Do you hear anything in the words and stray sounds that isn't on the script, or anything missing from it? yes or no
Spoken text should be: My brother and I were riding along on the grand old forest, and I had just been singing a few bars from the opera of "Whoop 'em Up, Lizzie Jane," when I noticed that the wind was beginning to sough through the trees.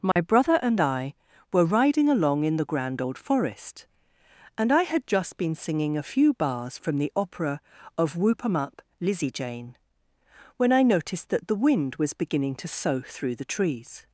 yes